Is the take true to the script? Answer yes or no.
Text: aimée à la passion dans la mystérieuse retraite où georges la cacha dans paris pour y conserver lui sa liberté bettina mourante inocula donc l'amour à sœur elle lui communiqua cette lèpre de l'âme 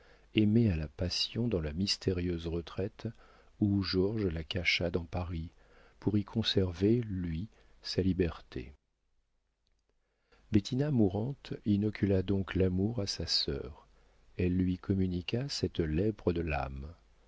no